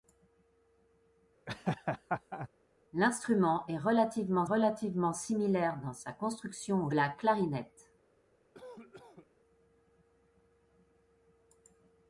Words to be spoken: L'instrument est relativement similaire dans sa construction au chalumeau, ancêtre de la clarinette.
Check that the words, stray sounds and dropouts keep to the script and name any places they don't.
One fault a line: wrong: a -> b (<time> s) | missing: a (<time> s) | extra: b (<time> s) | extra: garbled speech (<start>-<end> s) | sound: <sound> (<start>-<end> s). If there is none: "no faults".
sound: laugh (1.5-2.5 s)
extra: relativement (4.4 s)
missing: chalumeau ancêtre de (6.9 s)
sound: cough (8.5-9.3 s)